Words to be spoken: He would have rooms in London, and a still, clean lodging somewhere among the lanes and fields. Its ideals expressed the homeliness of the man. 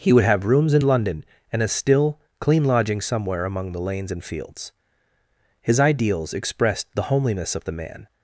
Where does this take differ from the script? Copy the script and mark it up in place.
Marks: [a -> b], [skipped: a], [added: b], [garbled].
He would have rooms in London, and a still, clean lodging somewhere among the lanes and fields. [Its -> His] ideals expressed the homeliness of the man.